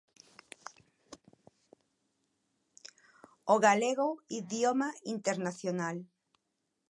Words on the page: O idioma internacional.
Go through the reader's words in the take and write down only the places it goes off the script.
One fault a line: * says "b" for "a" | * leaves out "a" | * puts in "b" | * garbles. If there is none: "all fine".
* puts in "galego"